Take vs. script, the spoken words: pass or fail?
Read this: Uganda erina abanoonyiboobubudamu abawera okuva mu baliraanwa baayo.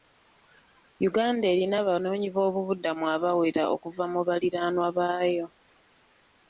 pass